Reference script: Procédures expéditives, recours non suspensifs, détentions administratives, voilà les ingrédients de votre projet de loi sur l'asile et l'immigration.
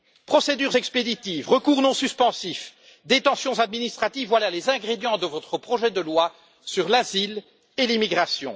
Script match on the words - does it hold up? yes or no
yes